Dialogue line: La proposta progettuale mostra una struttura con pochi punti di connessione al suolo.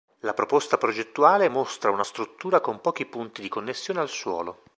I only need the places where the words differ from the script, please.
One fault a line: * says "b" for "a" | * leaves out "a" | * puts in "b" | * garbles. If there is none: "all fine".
all fine